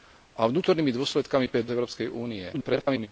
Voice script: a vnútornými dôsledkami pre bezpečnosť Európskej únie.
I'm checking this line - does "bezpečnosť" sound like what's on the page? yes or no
no